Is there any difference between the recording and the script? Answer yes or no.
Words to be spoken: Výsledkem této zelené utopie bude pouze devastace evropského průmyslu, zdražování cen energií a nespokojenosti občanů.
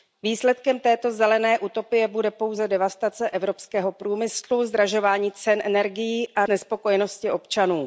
no